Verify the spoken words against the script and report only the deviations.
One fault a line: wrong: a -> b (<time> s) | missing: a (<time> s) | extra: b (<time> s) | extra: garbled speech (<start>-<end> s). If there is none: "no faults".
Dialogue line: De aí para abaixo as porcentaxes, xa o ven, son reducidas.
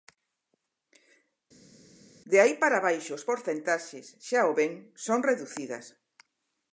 no faults